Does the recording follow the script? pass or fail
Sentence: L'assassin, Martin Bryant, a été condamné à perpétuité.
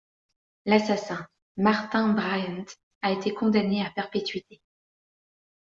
pass